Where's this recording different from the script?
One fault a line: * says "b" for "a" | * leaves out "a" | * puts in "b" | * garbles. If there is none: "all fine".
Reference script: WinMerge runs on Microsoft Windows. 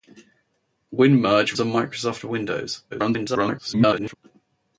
* leaves out "runs"
* garbles